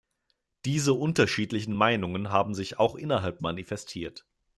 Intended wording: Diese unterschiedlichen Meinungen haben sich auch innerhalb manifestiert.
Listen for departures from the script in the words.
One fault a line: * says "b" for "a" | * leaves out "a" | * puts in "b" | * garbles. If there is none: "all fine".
all fine